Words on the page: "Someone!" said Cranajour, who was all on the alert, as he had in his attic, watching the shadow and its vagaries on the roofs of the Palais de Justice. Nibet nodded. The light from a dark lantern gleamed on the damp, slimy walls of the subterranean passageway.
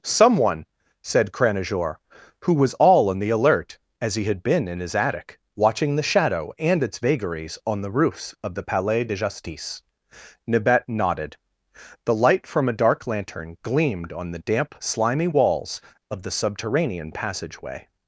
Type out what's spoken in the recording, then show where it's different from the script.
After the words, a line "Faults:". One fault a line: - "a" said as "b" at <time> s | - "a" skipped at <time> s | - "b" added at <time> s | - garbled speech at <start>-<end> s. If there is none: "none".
"Someone!" said Cranajour, who was all on the alert, as he had been in his attic, watching the shadow and its vagaries on the roofs of the Palais de Justice. Nibet nodded. The light from a dark lantern gleamed on the damp, slimy walls of the subterranean passageway.
Faults:
- "been" added at 4.4 s